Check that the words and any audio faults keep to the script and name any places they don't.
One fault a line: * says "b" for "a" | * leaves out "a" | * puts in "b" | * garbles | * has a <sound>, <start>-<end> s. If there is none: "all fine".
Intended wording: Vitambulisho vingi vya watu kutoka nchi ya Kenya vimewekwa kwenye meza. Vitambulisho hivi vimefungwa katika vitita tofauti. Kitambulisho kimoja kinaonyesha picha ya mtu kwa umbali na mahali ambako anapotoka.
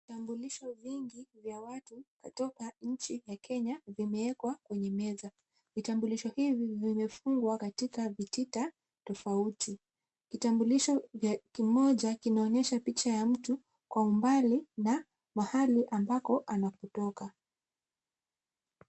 all fine